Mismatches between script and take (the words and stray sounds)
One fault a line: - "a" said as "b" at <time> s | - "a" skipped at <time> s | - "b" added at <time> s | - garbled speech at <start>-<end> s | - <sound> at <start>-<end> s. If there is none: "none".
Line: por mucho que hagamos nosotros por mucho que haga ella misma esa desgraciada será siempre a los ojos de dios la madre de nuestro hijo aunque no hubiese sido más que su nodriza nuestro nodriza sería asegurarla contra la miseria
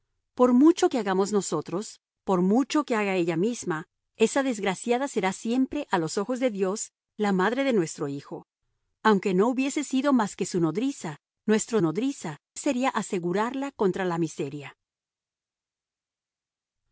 none